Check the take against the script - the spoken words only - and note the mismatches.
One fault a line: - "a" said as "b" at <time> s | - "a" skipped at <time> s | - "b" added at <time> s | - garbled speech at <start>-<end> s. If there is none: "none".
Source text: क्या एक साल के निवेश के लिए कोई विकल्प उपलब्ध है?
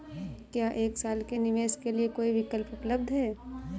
none